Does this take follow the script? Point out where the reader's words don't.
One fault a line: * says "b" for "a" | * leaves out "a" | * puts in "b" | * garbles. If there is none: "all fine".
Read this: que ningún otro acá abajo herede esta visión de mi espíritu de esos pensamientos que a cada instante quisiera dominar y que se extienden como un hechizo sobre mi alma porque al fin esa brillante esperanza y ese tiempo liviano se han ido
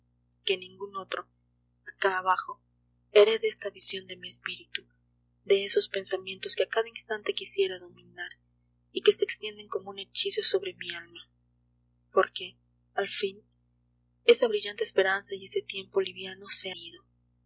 * leaves out "han"